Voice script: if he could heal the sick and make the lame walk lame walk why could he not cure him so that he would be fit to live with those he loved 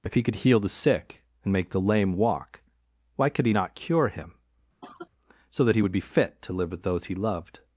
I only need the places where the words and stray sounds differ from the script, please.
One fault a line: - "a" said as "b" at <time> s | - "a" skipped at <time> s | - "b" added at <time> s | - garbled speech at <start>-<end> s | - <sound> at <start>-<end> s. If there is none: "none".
- "lame walk" skipped at 2.6 s
- cough at 4.8-5.1 s